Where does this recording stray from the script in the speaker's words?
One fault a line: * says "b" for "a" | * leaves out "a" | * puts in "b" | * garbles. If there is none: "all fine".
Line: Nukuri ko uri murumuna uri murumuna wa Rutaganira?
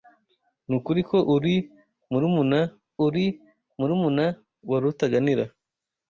all fine